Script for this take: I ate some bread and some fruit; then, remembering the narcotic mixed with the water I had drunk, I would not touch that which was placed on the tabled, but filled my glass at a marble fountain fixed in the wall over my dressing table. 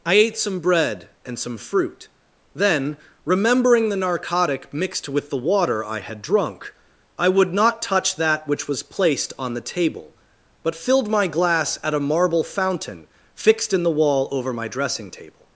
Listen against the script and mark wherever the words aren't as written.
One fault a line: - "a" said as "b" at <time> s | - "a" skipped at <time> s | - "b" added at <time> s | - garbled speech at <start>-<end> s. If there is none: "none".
- "tabled" said as "table" at 9.6 s